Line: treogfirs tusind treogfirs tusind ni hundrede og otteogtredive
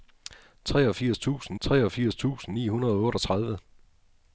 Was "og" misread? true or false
false